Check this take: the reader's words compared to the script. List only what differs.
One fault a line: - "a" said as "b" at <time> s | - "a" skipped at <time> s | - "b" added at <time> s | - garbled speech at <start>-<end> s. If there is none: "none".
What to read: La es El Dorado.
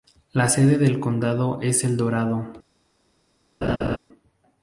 - "sede del condado" added at 0.5 s